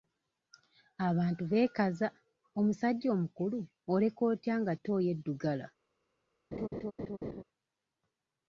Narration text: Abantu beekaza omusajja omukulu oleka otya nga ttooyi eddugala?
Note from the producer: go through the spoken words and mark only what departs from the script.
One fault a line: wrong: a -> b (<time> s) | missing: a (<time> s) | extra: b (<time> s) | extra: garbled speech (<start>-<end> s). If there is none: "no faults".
no faults